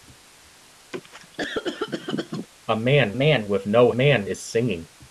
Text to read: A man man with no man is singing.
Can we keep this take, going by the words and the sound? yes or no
no